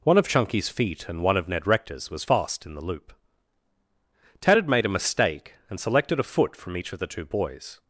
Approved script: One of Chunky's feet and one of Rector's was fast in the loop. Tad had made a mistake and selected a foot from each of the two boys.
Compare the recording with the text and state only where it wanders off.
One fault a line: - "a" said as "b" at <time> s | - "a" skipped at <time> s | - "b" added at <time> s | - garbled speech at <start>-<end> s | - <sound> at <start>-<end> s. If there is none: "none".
- "Ned" added at 1.5 s